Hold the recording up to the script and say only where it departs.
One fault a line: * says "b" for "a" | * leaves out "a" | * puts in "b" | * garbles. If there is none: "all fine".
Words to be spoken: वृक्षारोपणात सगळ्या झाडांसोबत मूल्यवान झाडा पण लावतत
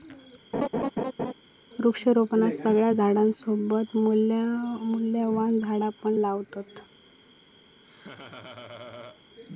all fine